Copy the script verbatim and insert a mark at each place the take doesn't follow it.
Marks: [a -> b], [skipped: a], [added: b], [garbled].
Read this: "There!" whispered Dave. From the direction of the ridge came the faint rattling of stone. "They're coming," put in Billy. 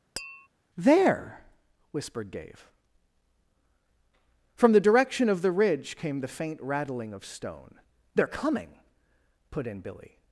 "There!" whispered Dave. From the direction of the ridge came the faint rattling of stone. "They're coming," put in Billy.